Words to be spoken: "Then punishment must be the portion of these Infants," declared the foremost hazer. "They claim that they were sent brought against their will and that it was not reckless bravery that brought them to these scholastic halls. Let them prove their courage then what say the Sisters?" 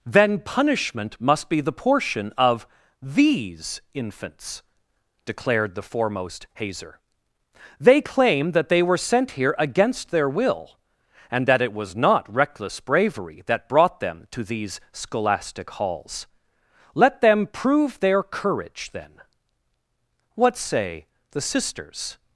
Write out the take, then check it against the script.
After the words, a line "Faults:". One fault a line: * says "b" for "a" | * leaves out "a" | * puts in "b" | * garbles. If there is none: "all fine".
"Then punishment must be the portion of these Infants," declared the foremost hazer. "They claim that they were sent here against their will and that it was not reckless bravery that brought them to these scholastic halls. Let them prove their courage then what say the Sisters?"
Faults:
* says "here" for "brought"